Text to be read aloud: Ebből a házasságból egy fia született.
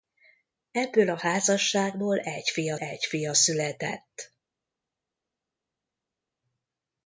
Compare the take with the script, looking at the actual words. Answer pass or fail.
fail